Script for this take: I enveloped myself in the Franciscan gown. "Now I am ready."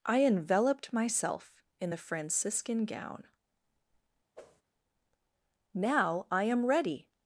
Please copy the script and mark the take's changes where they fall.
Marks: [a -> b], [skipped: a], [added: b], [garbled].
I enveloped myself in the Franciscan gown. "Now I am ready."